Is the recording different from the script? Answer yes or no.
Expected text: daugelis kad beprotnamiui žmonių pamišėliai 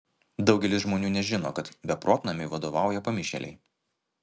yes